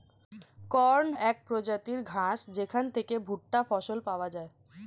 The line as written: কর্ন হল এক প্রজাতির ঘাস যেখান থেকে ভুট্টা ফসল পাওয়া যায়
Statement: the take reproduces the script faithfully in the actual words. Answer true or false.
false